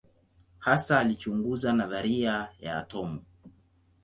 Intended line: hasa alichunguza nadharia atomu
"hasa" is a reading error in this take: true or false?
false